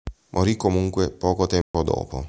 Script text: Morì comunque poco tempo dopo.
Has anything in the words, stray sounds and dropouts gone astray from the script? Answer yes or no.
yes